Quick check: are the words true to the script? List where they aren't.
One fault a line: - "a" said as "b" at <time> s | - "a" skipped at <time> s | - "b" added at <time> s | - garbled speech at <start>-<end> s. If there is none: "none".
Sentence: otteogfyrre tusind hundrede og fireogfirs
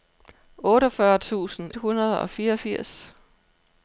none